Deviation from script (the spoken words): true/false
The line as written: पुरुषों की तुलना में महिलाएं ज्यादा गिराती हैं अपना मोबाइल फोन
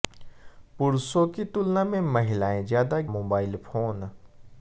true